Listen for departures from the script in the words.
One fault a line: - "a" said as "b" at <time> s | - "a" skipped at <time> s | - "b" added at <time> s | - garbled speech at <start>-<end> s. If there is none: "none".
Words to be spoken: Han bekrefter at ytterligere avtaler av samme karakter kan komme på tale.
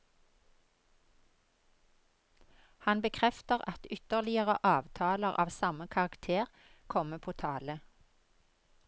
- "kan" skipped at 6.5 s